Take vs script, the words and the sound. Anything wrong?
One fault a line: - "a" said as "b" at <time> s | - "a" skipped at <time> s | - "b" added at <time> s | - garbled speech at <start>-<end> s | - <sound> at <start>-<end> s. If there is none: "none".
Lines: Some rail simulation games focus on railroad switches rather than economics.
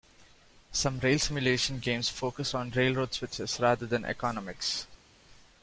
none